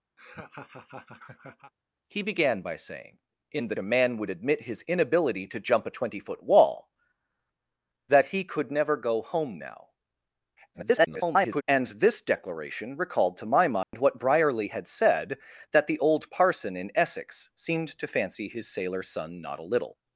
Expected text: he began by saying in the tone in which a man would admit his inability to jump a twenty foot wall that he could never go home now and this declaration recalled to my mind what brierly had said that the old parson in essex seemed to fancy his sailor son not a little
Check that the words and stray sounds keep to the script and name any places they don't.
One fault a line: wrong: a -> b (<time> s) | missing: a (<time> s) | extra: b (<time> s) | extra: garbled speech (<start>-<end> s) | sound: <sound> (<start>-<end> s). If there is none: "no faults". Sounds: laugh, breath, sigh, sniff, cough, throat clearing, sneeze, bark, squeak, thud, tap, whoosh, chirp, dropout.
sound: laugh (0.2-1.7 s)
missing: tone in which (3.7 s)
extra: garbled speech (10.7-11.6 s)
sound: dropout (13.8-13.9 s)